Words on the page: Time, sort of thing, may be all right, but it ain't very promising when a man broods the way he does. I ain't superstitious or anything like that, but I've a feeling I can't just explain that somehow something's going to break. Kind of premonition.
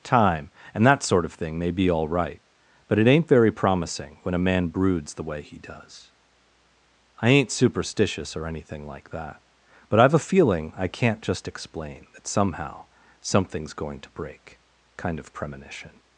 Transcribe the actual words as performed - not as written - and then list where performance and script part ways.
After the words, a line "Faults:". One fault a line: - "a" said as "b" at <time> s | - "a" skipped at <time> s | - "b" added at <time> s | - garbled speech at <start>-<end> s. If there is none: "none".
Time, and that sort of thing, may be all right, but it ain't very promising when a man broods the way he does. I ain't superstitious or anything like that, but I've a feeling I can't just explain that somehow something's going to break. Kind of premonition.
Faults:
- "and that" added at 0.7 s